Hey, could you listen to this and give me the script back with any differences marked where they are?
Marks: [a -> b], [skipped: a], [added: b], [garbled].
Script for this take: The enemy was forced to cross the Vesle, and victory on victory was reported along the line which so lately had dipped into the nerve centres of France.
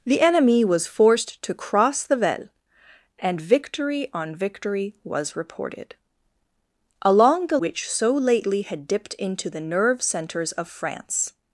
The enemy was forced to cross the Vesle, and victory on victory was reported along the [skipped: line] which so lately had dipped into the nerve centres of France.